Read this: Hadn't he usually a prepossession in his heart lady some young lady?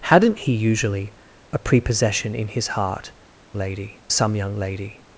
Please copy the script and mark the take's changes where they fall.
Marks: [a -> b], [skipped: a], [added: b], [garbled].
Hadn't he usually a prepossession in his heart lady some young lady?